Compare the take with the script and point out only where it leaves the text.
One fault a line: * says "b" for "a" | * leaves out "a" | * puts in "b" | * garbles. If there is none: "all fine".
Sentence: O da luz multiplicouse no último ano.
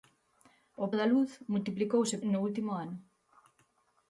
all fine